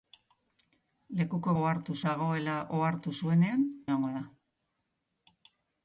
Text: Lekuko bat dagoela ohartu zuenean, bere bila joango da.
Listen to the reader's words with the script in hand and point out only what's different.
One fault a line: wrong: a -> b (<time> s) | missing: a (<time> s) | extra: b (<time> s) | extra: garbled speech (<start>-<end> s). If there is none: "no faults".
wrong: bat -> ohartu (1.6 s)
missing: bere bila (3.6 s)